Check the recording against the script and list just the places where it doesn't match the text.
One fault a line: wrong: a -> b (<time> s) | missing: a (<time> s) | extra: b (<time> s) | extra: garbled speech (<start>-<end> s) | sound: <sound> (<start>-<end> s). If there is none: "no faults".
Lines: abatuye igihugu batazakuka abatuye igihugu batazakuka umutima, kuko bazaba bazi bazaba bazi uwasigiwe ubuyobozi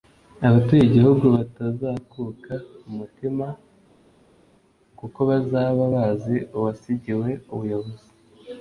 missing: abatuye igihugu batazakuka (2.5 s)
missing: bazaba bazi (6.4 s)